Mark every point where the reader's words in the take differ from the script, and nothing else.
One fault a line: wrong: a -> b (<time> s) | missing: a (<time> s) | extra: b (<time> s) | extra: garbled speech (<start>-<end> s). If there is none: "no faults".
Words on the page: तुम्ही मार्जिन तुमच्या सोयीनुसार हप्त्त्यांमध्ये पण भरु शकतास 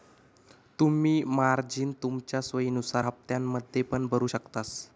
no faults